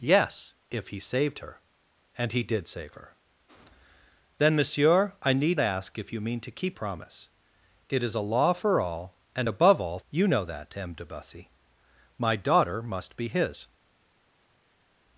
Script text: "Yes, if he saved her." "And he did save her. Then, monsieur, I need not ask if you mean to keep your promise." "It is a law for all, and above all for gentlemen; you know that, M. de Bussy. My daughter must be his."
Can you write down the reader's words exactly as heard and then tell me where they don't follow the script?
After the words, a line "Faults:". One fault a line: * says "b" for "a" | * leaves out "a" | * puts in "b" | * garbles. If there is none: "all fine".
"Yes, if he saved her." "And he did save her. Then, monsieur, I need ask if you mean to keep promise." "It is a law for all, and above all; you know that, M. de Bussy. My daughter must be his."
Faults:
* leaves out "not"
* leaves out "your"
* leaves out "for gentlemen"